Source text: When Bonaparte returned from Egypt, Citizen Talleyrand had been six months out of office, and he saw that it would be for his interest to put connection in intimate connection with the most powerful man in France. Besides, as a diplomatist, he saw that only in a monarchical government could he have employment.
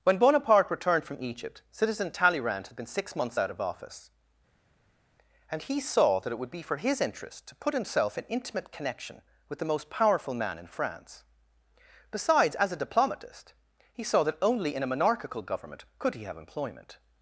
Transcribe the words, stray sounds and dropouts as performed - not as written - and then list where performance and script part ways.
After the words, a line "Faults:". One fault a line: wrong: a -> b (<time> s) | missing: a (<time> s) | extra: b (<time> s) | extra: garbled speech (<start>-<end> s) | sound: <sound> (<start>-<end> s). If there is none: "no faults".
When Bonaparte returned from Egypt, Citizen Talleyrand had been six months out of office, and he saw that it would be for his interest to put himself in intimate connection with the most powerful man in France. Besides, as a diplomatist, he saw that only in a monarchical government could he have employment.
Faults:
wrong: connection -> himself (7.8 s)